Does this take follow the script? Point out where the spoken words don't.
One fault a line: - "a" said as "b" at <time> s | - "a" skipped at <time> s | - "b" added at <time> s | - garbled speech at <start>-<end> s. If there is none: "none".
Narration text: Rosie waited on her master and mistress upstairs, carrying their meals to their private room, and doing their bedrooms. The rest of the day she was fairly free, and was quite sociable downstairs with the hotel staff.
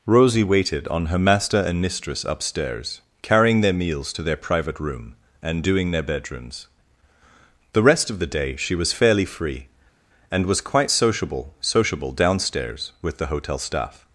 - "sociable" added at 11.6 s